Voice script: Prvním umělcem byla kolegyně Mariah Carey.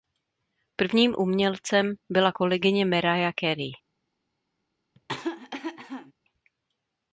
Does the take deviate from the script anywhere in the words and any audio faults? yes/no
yes